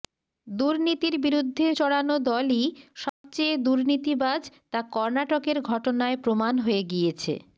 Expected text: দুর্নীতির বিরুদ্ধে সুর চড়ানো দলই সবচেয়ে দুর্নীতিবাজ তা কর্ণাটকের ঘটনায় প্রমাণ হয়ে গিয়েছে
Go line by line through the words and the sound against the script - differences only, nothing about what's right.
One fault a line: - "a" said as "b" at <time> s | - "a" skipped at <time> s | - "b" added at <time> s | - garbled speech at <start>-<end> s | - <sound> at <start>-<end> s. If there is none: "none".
- "সুর" skipped at 1.7 s
- dropout at 3.1-3.2 s